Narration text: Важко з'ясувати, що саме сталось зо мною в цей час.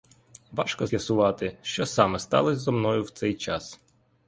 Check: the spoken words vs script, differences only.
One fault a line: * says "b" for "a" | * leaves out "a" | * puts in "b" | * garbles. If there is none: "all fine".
all fine